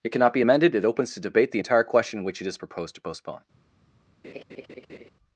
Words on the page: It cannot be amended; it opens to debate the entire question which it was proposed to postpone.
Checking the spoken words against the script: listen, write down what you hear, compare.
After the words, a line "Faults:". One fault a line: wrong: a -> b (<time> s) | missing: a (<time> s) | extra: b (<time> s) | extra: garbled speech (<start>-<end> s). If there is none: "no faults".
It cannot be amended; it opens to debate the entire question which it is proposed to postpone.
Faults:
wrong: was -> is (2.5 s)